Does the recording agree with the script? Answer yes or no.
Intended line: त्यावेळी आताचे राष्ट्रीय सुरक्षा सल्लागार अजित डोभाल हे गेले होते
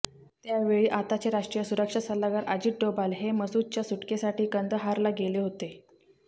no